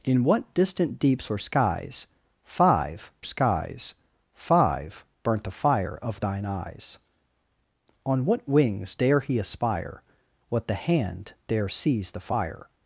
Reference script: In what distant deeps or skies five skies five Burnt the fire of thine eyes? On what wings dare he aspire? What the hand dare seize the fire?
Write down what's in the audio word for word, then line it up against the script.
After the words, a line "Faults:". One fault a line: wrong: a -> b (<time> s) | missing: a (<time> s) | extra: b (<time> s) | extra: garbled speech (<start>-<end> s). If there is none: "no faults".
In what distant deeps or skies five skies five Burnt the fire of thine eyes? On what wings dare he aspire? What the hand dare seize the fire?
Faults:
no faults